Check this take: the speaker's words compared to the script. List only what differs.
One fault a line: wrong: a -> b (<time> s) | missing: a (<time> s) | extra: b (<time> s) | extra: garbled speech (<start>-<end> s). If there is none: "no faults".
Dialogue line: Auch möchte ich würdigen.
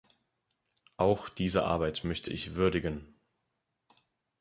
extra: diese Arbeit (1.3 s)